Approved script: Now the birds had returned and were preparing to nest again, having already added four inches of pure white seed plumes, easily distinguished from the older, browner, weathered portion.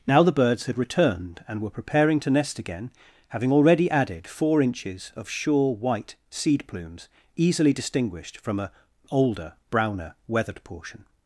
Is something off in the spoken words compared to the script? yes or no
yes